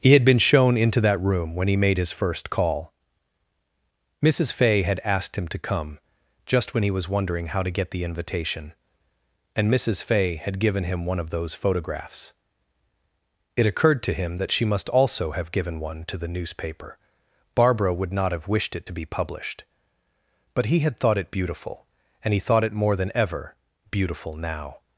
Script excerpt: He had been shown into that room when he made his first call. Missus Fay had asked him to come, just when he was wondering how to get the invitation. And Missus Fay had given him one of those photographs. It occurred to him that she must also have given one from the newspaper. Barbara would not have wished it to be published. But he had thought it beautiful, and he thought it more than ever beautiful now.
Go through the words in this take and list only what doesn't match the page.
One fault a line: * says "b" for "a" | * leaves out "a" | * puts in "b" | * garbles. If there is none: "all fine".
* says "to" for "from"